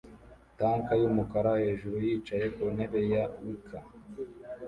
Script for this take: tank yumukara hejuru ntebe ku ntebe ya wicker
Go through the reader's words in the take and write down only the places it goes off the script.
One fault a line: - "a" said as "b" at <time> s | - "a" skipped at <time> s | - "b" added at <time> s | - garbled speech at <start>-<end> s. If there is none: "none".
- "ntebe" said as "yicaye" at 2.1 s